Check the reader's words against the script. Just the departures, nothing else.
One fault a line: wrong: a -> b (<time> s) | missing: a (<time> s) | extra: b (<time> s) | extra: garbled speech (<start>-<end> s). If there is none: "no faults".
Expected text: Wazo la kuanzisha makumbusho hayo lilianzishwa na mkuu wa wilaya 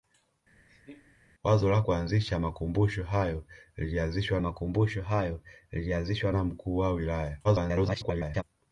extra: makumbusho hayo lilianzishwa (4.4 s)
extra: garbled speech (7.4-8.4 s)